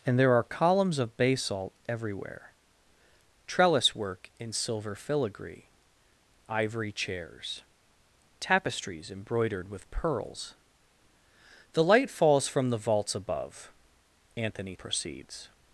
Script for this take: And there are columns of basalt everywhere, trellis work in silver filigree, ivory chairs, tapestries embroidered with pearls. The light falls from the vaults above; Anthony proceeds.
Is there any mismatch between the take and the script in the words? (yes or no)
no